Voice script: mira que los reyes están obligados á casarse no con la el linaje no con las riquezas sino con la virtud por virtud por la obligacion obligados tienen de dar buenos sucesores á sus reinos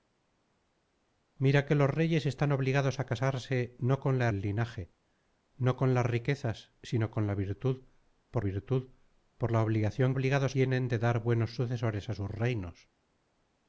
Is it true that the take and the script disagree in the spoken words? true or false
false